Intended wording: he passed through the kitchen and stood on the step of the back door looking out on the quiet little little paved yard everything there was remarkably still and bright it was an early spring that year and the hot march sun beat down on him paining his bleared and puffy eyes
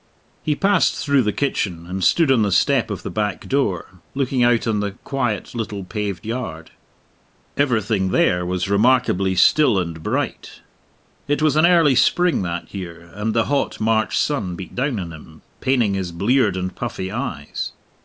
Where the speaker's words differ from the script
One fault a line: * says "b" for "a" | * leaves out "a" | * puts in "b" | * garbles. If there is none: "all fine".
* leaves out "little"